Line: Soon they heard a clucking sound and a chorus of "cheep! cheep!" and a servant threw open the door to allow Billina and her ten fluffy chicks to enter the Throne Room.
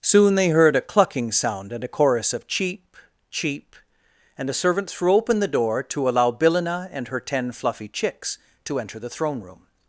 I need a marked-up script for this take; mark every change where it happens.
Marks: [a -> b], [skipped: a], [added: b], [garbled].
Soon they heard a clucking sound and a chorus of "cheep! cheep!" and a servant threw open the door to allow Billina and her ten fluffy chicks to enter the Throne Room.